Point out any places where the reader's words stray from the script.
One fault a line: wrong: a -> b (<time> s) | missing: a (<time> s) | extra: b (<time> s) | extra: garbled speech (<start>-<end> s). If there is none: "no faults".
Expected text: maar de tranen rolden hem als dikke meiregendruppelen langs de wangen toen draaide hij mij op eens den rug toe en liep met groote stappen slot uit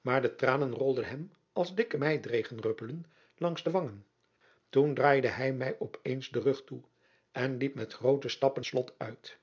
no faults